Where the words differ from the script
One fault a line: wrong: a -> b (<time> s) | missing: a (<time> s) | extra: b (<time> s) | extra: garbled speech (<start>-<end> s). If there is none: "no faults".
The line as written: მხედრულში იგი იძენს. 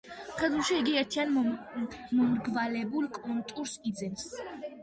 extra: ერთიან მომრგვალებულ კონტურს (1.0 s)